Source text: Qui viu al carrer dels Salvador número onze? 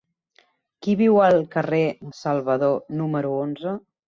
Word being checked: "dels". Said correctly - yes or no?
no